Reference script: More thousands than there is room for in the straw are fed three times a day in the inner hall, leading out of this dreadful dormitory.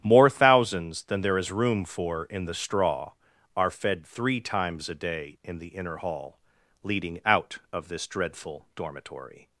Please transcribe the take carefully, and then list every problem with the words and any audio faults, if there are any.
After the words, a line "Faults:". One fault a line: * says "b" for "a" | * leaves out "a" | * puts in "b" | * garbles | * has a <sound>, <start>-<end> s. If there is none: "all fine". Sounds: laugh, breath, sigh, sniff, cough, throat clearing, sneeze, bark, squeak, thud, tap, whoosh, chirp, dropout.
More thousands than there is room for in the straw are fed three times a day in the inner hall, leading out of this dreadful dormitory.
Faults:
all fine